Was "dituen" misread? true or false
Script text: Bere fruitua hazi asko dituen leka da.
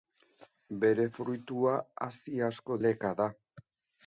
true